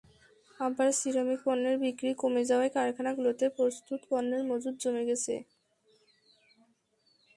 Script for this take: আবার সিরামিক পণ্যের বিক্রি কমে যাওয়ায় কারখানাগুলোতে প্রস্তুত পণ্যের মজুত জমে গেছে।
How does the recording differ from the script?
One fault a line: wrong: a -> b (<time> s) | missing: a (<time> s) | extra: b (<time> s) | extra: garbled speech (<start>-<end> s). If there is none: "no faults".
no faults